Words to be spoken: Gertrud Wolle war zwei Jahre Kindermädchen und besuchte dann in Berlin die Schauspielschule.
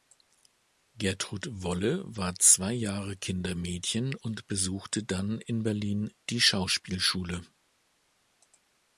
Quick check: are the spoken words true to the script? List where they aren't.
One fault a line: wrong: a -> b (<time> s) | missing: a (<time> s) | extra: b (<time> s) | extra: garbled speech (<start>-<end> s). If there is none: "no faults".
no faults